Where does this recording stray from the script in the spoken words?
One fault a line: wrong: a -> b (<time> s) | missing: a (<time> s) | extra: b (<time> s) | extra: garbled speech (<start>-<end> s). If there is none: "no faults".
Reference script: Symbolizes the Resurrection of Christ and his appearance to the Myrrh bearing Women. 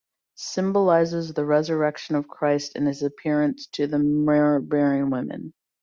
no faults